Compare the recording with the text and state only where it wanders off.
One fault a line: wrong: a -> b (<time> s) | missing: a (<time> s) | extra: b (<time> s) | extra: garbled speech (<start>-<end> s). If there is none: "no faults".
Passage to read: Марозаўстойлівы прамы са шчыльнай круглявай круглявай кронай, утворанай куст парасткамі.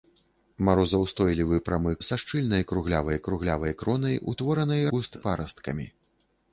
no faults